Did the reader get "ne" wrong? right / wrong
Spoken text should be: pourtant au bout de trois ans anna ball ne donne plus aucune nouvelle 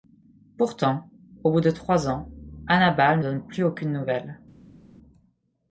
wrong